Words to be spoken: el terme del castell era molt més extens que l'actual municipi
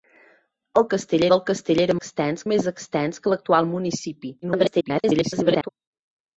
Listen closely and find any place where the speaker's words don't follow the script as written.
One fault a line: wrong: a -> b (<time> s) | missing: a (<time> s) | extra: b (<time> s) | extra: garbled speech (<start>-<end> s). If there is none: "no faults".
wrong: terme -> castell (0.9 s)
wrong: molt -> extens (2.0 s)
extra: garbled speech (4.4-5.7 s)